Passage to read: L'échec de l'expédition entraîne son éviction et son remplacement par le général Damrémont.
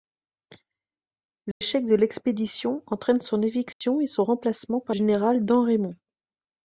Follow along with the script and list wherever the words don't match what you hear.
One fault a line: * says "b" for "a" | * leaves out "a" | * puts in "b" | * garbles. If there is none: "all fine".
* leaves out "le"